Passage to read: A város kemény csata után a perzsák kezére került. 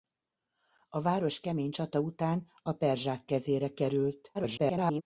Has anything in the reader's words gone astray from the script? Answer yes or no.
yes